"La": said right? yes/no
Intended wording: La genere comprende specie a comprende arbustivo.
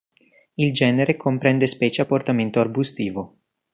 no